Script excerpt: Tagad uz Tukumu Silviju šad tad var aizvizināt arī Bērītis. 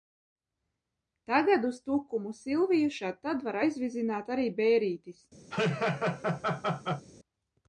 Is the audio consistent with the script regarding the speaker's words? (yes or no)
yes